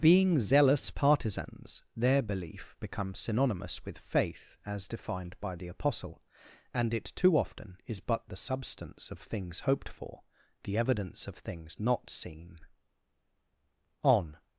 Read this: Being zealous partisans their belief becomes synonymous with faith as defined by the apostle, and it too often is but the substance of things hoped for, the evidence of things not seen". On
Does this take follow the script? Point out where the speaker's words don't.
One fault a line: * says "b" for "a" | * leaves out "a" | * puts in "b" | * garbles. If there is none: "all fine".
all fine